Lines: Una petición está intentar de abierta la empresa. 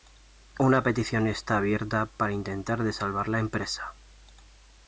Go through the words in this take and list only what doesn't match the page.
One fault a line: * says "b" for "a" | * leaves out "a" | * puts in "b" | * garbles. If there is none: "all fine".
* puts in "abierta para"
* says "salvar" for "abierta"